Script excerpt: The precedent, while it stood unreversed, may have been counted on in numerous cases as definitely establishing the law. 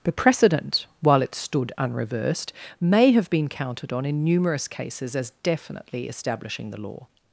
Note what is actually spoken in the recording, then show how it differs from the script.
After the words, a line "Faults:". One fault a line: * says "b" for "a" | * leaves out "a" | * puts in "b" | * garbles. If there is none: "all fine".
The precedent, while it stood unreversed, may have been counted on in numerous cases as definitely establishing the law.
Faults:
all fine